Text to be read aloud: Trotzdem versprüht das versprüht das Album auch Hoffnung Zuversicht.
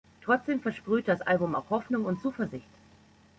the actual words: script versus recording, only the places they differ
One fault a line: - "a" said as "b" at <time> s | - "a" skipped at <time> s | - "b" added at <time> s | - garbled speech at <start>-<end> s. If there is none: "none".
- "versprüht das" skipped at 1.2 s
- "und" added at 2.0 s